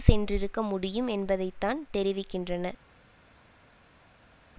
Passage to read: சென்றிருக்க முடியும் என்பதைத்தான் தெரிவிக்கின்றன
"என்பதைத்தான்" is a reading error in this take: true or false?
false